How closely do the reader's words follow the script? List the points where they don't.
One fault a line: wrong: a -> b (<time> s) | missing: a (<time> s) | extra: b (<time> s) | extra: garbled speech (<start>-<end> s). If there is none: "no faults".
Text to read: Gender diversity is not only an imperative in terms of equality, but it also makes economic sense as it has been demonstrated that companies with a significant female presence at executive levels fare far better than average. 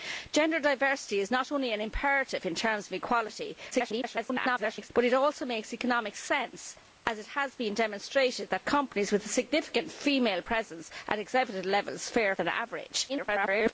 extra: garbled speech (3.7-4.9 s)
missing: far better (12.4 s)
extra: garbled speech (13.1-13.7 s)